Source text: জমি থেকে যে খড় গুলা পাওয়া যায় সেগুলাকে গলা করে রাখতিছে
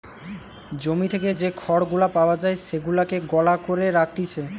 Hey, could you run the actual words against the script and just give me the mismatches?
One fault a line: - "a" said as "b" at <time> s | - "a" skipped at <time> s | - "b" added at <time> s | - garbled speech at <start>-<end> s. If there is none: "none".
none